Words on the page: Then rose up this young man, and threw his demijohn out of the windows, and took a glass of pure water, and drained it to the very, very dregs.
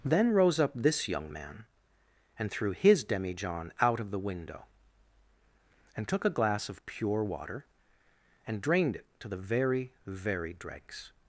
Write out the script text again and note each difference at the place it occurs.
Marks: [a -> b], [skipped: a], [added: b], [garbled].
Then rose up this young man, and threw his demijohn out of the [windows, -> window] and took a glass of pure water, and drained it to the very, very dregs.